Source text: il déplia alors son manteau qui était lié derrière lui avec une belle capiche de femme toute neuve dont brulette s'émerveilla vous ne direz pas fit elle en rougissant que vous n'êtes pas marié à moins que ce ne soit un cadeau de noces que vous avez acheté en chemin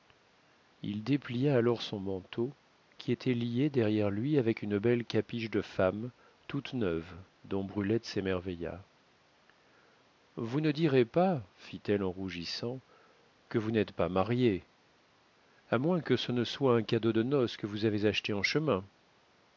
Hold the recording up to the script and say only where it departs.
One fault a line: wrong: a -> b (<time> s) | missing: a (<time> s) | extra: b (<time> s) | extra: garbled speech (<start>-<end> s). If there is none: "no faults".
no faults